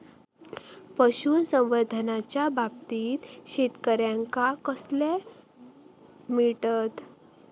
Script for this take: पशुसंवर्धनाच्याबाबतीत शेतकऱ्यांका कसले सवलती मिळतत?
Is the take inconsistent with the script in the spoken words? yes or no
yes